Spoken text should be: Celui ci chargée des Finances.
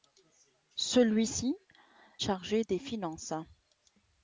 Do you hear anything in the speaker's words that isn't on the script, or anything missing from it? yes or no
no